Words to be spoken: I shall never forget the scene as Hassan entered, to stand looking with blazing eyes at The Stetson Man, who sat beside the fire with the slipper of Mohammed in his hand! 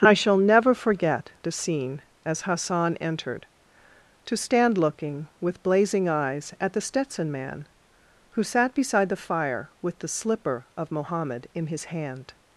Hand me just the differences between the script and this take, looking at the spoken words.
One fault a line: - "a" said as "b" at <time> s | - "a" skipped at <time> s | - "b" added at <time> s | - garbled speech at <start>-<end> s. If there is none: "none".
none